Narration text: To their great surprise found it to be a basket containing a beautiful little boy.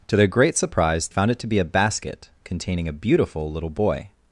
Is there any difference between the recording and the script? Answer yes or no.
no